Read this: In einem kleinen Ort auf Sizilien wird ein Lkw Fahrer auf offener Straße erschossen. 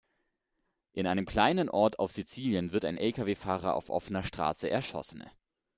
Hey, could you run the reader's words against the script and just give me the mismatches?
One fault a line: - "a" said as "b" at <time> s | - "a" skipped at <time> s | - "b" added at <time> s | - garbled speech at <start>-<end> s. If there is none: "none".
none